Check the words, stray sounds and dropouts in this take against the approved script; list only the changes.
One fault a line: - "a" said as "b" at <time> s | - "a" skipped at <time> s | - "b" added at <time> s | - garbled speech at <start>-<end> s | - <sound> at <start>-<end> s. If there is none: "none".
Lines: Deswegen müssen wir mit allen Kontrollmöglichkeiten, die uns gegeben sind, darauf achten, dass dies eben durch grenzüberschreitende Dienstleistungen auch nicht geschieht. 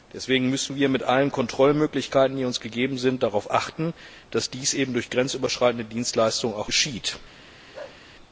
- "nicht" skipped at 6.7 s
- bark at 7.7-8.0 s